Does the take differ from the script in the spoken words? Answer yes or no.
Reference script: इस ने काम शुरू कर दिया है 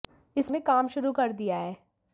no